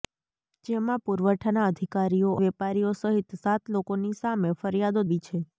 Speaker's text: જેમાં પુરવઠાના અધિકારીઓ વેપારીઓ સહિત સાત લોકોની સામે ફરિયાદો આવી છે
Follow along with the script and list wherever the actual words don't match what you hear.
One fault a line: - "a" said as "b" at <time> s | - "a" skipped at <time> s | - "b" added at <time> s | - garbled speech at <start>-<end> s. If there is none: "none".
none